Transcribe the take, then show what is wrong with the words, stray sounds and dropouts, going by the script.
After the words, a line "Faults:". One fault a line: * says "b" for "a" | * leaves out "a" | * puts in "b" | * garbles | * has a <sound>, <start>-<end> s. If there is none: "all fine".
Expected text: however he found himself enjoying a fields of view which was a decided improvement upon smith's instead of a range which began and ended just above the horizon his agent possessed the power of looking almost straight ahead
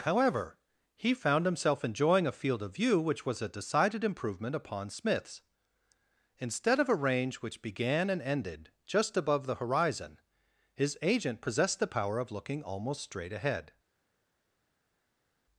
however he found himself enjoying a field of view which was a decided improvement upon smith's instead of a range which began and ended just above the horizon his agent possessed the power of looking almost straight ahead
Faults:
* says "field" for "fields"